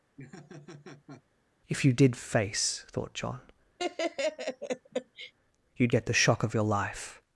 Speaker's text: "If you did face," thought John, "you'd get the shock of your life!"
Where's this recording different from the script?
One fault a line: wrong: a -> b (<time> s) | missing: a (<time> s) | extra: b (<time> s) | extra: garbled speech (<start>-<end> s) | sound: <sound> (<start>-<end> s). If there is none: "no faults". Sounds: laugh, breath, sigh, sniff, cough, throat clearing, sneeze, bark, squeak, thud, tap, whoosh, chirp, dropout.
sound: laugh (0.2-1.2 s)
sound: laugh (3.8-5.3 s)